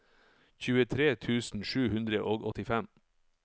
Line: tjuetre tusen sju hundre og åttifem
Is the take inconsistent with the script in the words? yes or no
no